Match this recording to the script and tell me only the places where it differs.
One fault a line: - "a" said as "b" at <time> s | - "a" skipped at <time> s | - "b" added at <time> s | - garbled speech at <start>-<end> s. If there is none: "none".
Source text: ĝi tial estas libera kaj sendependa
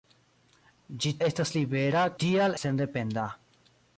- "tial" skipped at 1.1 s
- "kaj" said as "tial" at 2.2 s